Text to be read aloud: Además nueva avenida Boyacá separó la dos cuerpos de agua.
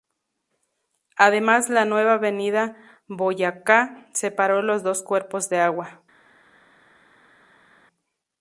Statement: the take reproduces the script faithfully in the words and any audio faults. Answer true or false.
false